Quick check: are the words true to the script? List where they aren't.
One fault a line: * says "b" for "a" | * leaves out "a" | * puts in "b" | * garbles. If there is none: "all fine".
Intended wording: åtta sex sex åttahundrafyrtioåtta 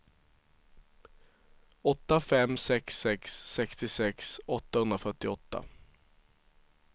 * puts in "fem"
* puts in "sextiosex"